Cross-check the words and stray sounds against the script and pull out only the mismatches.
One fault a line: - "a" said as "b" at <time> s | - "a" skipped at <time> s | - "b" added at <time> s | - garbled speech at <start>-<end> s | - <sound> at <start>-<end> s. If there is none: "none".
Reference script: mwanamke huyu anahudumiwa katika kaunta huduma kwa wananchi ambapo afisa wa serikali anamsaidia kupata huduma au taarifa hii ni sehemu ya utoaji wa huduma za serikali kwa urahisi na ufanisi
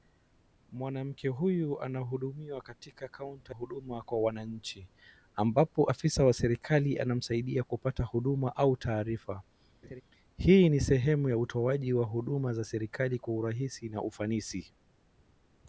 - laugh at 9.8-10.0 s